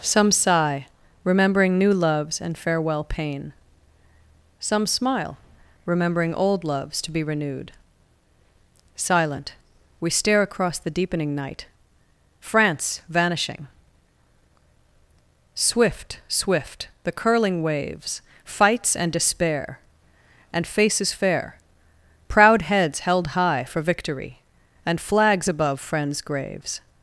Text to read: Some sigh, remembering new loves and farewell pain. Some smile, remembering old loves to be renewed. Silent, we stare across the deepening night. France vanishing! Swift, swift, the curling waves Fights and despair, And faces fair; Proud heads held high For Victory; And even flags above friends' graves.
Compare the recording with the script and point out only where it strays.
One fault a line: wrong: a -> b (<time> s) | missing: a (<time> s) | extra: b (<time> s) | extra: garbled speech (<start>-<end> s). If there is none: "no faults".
missing: even (25.0 s)